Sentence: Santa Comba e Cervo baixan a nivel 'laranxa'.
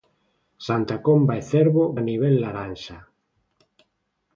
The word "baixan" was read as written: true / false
false